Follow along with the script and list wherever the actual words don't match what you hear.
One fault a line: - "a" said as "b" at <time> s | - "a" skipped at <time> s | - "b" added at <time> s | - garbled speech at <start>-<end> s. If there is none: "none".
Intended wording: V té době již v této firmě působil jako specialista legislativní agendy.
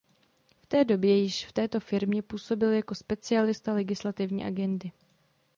none